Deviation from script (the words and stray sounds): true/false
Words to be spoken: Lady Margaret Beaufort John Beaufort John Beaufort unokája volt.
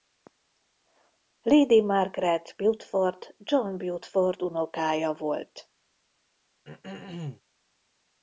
true